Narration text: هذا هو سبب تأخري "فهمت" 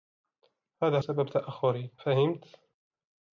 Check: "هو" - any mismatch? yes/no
yes